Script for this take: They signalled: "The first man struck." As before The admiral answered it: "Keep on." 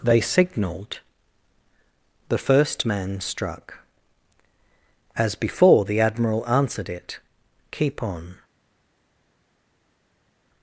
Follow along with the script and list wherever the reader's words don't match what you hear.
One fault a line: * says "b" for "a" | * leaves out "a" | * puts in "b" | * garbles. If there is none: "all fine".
all fine